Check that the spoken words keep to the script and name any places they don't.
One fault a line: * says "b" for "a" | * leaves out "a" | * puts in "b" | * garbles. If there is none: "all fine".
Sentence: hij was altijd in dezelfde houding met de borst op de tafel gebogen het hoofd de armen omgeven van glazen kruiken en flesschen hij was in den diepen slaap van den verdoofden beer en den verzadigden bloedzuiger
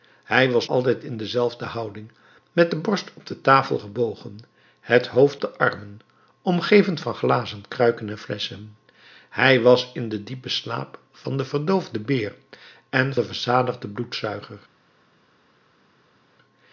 all fine